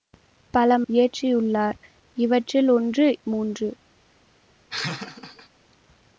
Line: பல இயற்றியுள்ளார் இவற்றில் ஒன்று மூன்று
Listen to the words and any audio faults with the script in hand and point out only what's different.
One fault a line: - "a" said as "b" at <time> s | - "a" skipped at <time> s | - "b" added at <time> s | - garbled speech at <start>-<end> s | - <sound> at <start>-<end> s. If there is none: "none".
- laugh at 4.7-5.5 s